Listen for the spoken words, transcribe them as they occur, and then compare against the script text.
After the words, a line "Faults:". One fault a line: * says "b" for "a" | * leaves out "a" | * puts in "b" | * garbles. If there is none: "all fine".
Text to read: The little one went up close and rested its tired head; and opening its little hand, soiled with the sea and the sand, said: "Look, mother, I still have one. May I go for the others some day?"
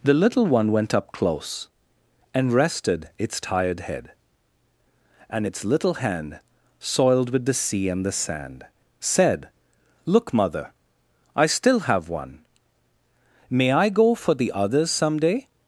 The little one went up close and rested its tired head; and its little hand, soiled with the sea and the sand, said: "Look, mother, I still have one. May I go for the others some day?"
Faults:
* leaves out "opening"